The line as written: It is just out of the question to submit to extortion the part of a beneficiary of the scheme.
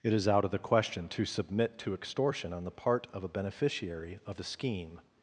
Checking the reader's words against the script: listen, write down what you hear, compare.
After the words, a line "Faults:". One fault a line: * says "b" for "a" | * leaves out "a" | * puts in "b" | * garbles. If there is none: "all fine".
It is out of the question to submit to extortion on the part of a beneficiary of the scheme.
Faults:
* leaves out "just"
* puts in "on"